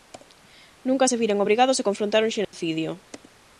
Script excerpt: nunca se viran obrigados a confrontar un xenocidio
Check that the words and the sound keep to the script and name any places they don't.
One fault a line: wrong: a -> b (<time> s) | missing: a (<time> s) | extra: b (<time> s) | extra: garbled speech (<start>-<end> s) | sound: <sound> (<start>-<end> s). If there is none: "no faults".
sound: dropout (2.4-2.5 s)